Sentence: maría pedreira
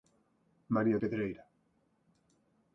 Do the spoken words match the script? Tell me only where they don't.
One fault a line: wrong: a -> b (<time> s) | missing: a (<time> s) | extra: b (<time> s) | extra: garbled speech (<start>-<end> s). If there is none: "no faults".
no faults